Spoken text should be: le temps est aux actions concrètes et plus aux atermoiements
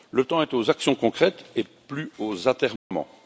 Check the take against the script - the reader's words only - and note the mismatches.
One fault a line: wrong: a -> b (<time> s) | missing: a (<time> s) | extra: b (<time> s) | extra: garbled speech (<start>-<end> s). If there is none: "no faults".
no faults